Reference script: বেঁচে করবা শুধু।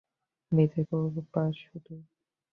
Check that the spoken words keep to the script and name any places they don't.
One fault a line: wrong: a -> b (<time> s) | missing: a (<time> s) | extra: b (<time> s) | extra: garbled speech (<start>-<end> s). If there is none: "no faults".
no faults